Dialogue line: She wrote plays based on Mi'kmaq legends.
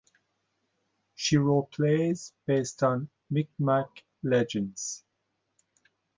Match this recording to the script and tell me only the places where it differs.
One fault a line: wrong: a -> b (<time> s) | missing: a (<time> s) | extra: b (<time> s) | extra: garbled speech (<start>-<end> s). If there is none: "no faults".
no faults